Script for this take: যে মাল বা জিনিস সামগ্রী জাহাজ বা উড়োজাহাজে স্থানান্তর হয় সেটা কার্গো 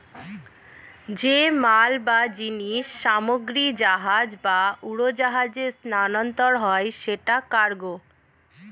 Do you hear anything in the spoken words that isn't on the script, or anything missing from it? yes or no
no